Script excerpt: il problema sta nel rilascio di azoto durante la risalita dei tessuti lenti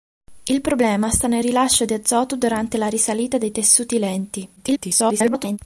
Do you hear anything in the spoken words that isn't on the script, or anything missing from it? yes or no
yes